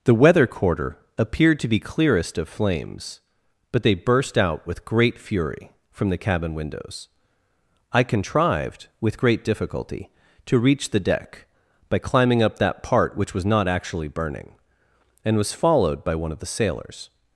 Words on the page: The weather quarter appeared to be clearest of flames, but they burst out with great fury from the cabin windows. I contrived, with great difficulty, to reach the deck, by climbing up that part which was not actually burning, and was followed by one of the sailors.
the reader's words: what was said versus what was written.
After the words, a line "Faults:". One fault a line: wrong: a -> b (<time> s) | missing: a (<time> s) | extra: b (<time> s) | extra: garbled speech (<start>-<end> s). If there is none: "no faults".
The weather quarter appeared to be clearest of flames, but they burst out with great fury from the cabin windows. I contrived, with great difficulty, to reach the deck, by climbing up that part which was not actually burning, and was followed by one of the sailors.
Faults:
no faults